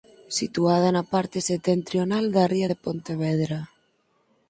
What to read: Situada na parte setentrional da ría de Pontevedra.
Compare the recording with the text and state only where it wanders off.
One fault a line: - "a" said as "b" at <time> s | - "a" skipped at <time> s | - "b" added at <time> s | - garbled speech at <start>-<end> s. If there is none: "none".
none